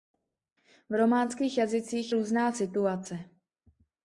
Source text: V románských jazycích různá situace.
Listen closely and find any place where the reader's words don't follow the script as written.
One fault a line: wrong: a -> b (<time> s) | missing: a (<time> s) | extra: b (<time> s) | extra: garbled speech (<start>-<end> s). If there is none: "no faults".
no faults